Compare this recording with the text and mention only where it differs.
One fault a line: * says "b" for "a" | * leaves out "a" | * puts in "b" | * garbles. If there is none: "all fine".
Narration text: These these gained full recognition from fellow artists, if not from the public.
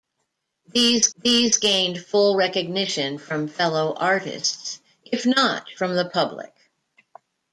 all fine